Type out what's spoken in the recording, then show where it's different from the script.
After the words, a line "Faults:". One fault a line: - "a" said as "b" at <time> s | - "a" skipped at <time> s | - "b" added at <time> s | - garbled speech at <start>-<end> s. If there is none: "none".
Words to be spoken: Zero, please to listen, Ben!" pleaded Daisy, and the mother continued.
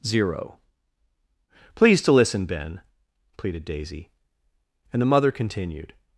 Zero, please to listen, Ben!" pleaded Daisy, and the mother continued.
Faults:
none